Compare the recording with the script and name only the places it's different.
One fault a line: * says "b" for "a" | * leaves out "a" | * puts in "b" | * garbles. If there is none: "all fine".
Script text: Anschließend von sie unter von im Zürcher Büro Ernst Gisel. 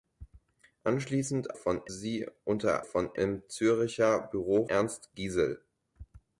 all fine